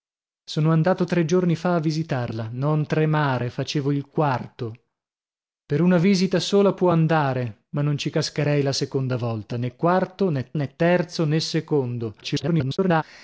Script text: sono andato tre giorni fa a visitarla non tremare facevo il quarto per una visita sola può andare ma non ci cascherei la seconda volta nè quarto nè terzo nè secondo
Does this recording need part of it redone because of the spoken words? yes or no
yes